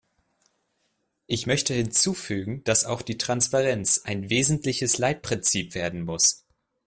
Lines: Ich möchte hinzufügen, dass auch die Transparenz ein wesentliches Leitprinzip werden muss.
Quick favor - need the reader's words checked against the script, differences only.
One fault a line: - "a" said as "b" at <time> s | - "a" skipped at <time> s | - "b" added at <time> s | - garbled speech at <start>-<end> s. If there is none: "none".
none